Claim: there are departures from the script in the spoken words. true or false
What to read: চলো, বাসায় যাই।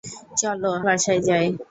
false